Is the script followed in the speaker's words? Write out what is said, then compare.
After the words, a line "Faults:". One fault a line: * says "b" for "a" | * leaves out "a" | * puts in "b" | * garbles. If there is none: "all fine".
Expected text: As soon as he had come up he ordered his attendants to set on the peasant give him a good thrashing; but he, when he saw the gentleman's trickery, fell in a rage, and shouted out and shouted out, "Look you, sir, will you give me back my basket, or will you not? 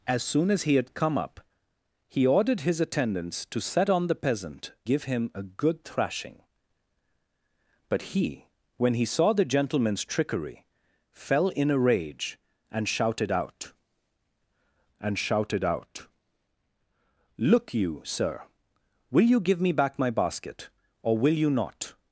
As soon as he had come up he ordered his attendants to set on the peasant give him a good thrashing; but he, when he saw the gentleman's trickery, fell in a rage, and shouted out and shouted out, "Look you, sir, will you give me back my basket, or will you not?
Faults:
all fine